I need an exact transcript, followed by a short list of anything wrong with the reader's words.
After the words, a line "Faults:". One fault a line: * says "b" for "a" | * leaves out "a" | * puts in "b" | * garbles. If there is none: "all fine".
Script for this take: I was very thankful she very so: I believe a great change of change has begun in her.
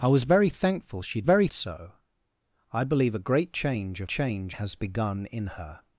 I was very thankful she very so: I believe a great change of change has begun in her.
Faults:
all fine